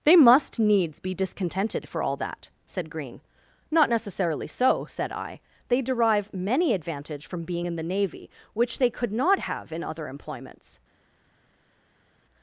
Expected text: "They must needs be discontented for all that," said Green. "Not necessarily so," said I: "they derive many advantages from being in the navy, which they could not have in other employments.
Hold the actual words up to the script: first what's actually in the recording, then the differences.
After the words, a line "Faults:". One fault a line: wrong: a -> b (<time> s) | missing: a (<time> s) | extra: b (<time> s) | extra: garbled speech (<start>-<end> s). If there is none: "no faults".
"They must needs be discontented for all that," said Green. "Not necessarily so," said I: "they derive many advantage from being in the navy, which they could not have in other employments.
Faults:
wrong: advantages -> advantage (6.7 s)